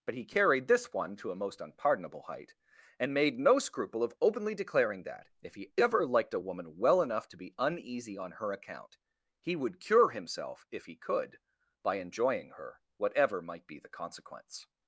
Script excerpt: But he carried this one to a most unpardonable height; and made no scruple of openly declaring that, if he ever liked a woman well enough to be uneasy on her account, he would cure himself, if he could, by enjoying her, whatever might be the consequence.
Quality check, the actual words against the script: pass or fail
pass